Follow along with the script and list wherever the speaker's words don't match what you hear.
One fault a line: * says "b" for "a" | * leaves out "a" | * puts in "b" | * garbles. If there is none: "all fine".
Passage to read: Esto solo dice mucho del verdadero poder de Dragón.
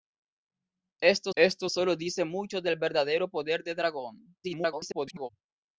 * puts in "esto"
* garbles